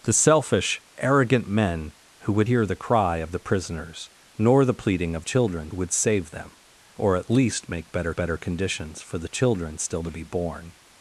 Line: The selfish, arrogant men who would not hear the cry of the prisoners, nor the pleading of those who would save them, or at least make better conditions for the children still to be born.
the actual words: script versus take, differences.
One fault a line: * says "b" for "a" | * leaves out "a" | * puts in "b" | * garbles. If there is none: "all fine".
* leaves out "not"
* says "children" for "those"
* puts in "better"